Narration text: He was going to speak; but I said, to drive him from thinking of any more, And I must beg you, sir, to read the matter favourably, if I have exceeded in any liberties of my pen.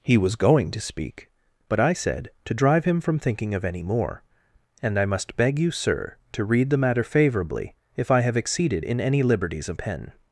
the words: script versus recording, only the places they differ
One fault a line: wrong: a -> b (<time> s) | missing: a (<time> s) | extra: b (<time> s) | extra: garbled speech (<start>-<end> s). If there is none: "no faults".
missing: my (9.8 s)